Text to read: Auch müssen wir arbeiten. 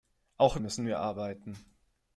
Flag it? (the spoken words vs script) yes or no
no